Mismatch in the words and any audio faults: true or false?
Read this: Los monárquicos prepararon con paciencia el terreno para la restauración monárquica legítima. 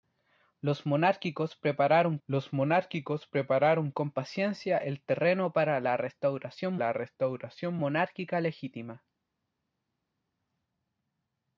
true